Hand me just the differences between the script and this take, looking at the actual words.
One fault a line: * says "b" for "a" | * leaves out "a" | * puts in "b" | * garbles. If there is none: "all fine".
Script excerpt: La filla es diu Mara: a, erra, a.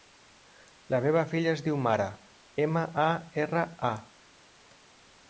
* puts in "meva"
* puts in "ema"